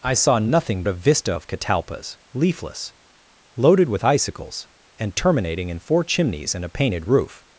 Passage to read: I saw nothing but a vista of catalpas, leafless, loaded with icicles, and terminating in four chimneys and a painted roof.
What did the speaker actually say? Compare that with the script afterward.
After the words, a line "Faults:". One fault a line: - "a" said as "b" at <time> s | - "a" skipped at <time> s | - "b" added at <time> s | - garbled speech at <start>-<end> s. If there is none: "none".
I saw nothing a vista of catalpas, leafless, loaded with icicles, and terminating in four chimneys and a painted roof.
Faults:
- "but" skipped at 0.8 s